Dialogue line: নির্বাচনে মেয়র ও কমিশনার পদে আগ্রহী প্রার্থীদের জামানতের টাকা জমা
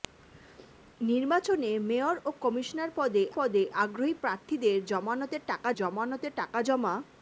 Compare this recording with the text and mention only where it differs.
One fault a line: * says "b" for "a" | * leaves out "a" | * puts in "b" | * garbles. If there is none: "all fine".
* puts in "পদে"
* puts in "জামানতের টাকা"